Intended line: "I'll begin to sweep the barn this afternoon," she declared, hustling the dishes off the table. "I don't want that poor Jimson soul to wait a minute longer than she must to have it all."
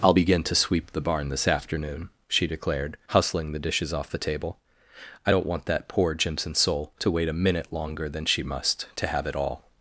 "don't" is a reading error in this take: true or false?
false